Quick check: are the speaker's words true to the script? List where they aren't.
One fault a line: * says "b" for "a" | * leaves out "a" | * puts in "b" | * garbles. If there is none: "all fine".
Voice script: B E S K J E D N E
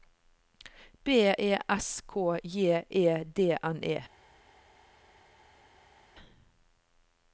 all fine